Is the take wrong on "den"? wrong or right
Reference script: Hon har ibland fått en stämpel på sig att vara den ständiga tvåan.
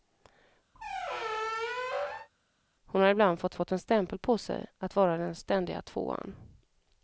right